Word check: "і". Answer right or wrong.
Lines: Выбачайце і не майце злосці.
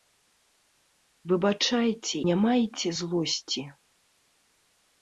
wrong